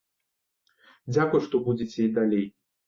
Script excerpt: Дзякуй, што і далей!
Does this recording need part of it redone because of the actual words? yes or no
yes